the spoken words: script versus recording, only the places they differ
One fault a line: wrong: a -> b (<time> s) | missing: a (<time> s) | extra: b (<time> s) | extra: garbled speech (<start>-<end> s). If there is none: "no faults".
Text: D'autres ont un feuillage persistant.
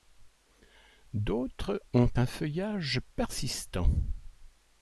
no faults